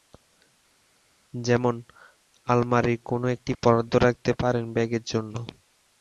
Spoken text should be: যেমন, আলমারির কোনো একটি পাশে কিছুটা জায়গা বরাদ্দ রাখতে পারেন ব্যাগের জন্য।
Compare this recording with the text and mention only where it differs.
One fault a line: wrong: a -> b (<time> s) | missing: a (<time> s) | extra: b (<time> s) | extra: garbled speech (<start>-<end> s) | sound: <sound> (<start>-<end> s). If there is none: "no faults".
missing: পাশে কিছুটা জায়গা (3.5 s)